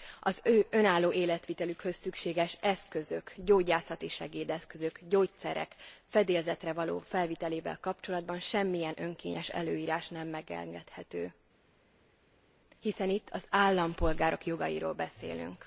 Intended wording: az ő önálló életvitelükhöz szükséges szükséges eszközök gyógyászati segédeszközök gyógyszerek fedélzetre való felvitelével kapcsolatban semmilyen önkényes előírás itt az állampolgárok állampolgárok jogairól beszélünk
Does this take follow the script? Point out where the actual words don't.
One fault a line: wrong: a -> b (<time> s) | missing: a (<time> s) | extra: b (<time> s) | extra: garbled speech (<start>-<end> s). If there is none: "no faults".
missing: szükséges (2.6 s)
extra: nem megengedhető hiszen (10.1 s)
missing: állampolgárok (14.4 s)